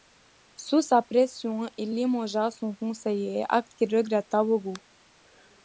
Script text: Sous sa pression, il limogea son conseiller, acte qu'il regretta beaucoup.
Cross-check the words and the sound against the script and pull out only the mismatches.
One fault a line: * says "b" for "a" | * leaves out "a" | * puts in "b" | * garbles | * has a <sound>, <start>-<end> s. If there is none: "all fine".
all fine